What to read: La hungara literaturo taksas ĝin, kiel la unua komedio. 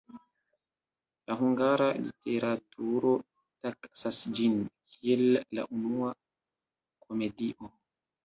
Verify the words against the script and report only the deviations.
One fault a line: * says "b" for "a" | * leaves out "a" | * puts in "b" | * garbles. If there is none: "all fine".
all fine